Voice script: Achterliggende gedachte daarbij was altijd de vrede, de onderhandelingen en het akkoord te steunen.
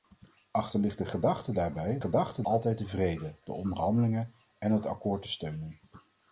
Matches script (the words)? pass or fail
fail